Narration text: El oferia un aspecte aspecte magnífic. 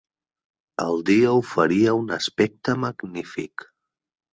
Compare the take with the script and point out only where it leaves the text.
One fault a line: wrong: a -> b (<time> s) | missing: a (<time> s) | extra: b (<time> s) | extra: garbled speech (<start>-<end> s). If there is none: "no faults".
extra: dia (1.1 s)
missing: aspecte (2.8 s)